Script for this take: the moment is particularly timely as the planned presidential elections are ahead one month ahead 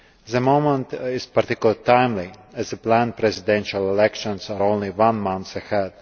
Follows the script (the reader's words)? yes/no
no